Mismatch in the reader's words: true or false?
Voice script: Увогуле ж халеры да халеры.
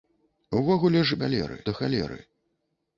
false